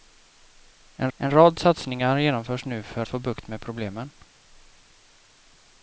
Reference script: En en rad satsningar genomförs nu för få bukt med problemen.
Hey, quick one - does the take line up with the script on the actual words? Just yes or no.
yes